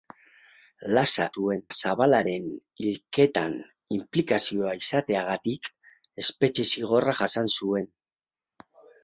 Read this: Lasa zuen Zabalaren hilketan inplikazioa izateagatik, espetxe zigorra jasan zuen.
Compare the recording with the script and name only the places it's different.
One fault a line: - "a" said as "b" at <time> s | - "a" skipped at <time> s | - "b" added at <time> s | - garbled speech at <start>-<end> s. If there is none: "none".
none